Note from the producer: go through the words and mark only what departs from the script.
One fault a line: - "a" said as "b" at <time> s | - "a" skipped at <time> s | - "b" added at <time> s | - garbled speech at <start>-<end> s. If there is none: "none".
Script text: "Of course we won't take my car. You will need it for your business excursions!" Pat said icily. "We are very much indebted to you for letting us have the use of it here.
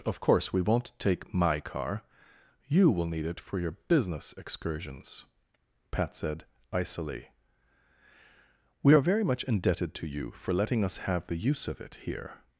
none